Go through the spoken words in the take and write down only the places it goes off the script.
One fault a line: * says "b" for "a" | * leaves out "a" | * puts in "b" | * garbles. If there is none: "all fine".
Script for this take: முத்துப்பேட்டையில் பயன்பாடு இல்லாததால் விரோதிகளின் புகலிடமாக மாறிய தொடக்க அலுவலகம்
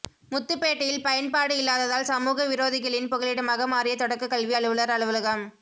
* puts in "சமூக"
* puts in "கல்வி அலுவலர்"